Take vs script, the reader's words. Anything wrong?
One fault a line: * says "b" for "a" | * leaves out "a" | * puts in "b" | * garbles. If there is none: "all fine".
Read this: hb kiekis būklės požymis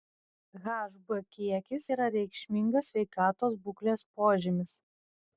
* puts in "yra reikšmingas sveikatos"